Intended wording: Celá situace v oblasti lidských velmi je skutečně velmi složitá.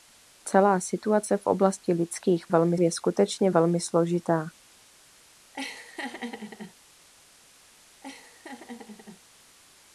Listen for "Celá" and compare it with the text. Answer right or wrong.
right